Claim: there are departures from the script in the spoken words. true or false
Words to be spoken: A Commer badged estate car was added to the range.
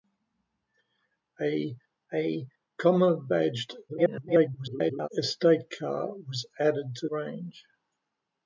true